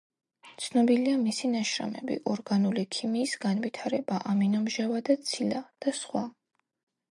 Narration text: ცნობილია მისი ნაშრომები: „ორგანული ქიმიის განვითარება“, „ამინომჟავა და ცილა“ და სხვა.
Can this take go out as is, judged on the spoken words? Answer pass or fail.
pass